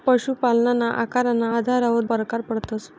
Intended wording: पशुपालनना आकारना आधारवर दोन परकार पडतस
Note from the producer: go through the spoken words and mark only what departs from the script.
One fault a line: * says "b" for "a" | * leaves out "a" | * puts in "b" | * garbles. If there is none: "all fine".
* leaves out "दोन"